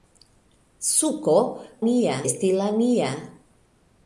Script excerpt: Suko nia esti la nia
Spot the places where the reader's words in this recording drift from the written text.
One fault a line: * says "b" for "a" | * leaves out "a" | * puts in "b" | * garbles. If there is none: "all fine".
all fine